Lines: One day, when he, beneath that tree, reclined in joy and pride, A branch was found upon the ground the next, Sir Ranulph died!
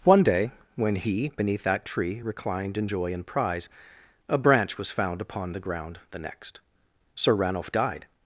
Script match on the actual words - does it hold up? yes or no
no